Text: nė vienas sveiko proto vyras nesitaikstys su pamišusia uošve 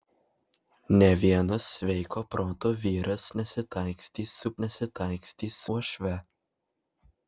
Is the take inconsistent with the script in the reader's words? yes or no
yes